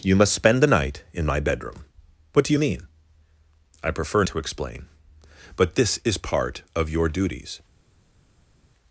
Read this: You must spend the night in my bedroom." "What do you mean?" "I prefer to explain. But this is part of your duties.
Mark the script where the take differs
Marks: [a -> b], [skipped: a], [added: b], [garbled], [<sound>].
You must spend the night in my bedroom." "What do you mean?" "I prefer to explain. But this is part of your duties.